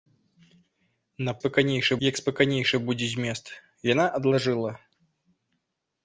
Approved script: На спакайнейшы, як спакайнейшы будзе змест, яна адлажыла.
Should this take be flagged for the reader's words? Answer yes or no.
no